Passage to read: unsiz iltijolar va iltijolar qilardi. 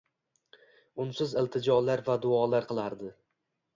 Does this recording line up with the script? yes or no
no